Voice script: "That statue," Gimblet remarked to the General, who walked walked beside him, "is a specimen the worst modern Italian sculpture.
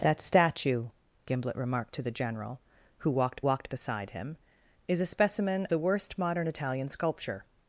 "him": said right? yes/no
yes